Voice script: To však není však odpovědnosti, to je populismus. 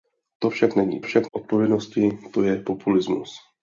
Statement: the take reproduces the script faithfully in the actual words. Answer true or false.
true